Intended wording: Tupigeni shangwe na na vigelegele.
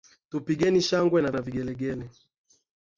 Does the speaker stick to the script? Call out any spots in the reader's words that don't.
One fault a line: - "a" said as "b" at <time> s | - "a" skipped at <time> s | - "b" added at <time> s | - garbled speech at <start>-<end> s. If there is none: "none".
none